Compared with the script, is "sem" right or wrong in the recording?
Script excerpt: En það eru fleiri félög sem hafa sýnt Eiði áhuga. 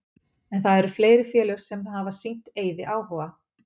right